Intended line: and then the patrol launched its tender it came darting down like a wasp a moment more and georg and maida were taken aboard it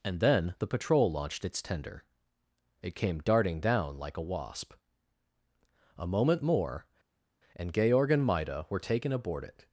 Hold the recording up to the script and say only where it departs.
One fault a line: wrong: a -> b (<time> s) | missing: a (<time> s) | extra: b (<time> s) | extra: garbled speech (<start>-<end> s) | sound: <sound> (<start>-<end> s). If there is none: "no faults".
no faults